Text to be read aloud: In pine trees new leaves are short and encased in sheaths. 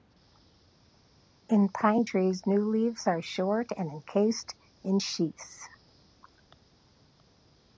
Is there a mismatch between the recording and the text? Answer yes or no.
no